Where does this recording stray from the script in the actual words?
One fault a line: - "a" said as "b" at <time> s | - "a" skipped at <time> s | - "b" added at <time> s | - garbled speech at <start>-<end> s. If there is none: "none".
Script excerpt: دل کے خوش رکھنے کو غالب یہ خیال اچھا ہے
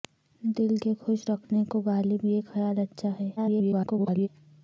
- garbled speech at 3.4-4.3 s